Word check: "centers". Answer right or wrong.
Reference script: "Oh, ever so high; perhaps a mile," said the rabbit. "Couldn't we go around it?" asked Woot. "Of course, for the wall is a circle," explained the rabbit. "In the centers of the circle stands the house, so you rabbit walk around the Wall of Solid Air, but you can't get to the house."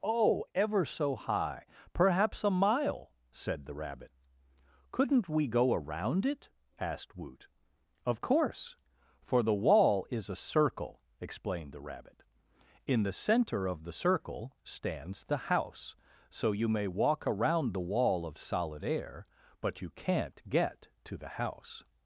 wrong